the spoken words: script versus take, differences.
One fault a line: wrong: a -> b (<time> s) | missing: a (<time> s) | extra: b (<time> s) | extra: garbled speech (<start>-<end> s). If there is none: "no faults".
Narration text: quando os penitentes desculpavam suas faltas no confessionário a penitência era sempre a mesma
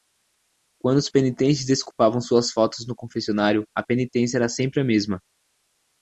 no faults